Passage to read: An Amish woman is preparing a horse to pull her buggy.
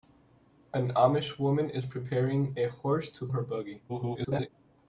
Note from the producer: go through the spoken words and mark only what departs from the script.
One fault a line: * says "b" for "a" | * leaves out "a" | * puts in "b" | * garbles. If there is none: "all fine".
* leaves out "pull"
* garbles